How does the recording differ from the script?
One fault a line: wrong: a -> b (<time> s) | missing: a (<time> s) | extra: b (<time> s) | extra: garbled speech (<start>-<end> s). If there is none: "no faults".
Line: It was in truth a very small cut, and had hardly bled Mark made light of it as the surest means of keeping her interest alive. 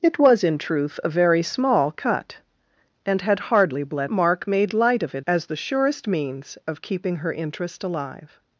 no faults